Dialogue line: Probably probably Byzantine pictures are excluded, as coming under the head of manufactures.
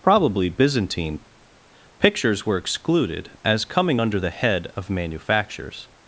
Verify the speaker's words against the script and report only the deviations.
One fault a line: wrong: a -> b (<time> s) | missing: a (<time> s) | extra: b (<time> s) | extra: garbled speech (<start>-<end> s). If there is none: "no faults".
missing: probably (0.5 s)
wrong: are -> were (2.5 s)